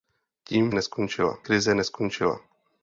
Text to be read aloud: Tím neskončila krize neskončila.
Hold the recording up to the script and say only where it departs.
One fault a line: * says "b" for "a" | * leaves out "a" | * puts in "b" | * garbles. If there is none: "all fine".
all fine